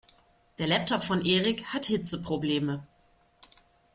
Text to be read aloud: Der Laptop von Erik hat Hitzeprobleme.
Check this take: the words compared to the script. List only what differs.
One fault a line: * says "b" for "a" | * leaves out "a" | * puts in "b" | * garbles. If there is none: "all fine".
all fine